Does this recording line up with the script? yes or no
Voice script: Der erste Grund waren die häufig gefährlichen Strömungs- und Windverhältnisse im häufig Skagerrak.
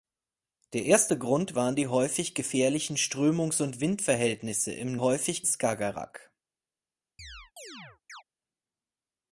yes